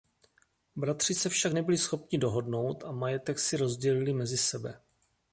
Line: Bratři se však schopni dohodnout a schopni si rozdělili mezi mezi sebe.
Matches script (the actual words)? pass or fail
fail